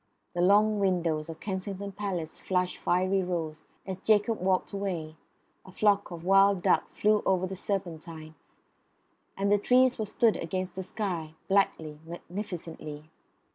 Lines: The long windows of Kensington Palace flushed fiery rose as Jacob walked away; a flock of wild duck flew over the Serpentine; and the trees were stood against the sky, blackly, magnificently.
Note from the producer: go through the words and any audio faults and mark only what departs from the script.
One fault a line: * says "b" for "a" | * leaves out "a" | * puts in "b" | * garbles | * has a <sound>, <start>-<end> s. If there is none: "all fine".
all fine